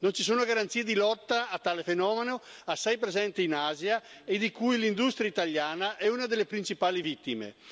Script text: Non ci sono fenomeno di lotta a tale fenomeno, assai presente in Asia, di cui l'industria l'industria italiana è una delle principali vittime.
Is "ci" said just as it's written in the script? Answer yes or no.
yes